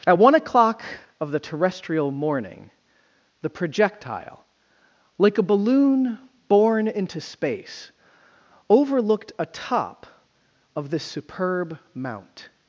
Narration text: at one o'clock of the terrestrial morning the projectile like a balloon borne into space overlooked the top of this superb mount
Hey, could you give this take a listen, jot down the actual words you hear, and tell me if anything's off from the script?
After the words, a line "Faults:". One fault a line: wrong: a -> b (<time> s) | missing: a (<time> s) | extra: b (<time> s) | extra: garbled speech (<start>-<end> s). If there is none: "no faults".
at one o'clock of the terrestrial morning the projectile like a balloon borne into space overlooked a top of this superb mount
Faults:
wrong: the -> a (9.4 s)